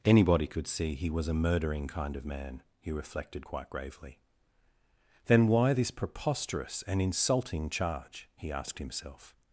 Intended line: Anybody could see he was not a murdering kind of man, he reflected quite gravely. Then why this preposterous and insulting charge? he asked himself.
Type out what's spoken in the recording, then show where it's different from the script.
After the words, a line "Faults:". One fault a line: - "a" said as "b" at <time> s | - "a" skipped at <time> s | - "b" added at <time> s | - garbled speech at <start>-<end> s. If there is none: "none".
Anybody could see he was a murdering kind of man, he reflected quite gravely. Then why this preposterous and insulting charge? he asked himself.
Faults:
- "not" skipped at 1.3 s